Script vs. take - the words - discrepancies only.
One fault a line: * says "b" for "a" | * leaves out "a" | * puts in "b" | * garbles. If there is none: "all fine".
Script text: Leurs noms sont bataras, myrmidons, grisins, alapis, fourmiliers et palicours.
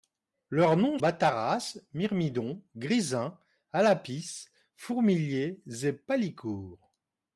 * leaves out "sont"